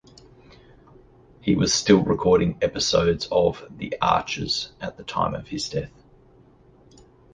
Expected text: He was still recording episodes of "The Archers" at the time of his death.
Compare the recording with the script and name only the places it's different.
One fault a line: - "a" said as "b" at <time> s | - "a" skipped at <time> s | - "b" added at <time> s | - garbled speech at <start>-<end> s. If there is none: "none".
none